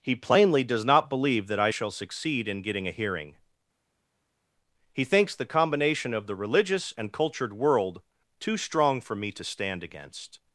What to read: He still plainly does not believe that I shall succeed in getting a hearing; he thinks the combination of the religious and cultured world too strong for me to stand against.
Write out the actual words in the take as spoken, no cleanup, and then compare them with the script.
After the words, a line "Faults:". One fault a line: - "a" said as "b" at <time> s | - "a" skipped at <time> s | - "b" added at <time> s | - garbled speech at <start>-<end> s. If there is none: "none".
He plainly does not believe that I shall succeed in getting a hearing; he thinks the combination of the religious and cultured world too strong for me to stand against.
Faults:
- "still" skipped at 0.1 s